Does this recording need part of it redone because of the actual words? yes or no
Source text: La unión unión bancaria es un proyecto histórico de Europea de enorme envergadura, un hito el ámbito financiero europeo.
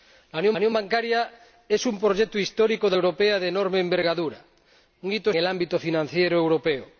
no